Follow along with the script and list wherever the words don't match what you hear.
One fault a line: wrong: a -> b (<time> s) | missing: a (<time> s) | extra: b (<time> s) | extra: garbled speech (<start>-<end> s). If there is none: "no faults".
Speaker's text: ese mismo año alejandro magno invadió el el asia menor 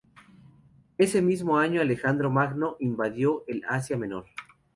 missing: el (3.6 s)